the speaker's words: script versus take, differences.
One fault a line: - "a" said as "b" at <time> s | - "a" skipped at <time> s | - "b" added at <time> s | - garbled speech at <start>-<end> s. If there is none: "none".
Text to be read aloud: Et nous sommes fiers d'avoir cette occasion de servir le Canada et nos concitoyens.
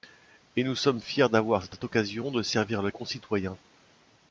- "cette" added at 1.7 s
- "Canada et nos" skipped at 2.9 s